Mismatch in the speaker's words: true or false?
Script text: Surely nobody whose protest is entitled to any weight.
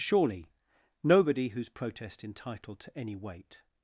true